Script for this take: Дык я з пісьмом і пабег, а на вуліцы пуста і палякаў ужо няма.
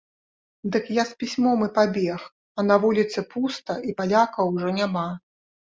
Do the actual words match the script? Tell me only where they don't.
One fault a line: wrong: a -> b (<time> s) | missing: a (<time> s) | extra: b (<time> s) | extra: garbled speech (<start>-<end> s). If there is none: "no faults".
no faults